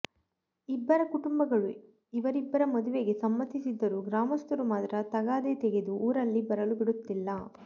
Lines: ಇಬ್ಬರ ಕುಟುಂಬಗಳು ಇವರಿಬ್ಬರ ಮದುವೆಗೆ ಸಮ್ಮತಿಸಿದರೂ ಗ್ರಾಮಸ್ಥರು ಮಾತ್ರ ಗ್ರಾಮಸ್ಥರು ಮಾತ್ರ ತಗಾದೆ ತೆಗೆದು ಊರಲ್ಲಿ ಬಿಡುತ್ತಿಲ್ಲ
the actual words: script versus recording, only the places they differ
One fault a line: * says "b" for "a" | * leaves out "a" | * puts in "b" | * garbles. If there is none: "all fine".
* leaves out "ಗ್ರಾಮಸ್ಥರು ಮಾತ್ರ"
* puts in "ಬರಲು"